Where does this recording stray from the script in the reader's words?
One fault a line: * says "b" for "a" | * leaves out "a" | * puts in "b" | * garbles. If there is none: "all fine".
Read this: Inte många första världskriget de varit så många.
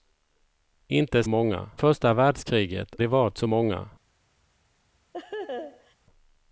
all fine